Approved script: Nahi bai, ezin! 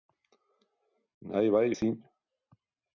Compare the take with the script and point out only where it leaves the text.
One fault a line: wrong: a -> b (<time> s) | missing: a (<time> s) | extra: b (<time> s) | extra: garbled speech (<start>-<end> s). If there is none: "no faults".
no faults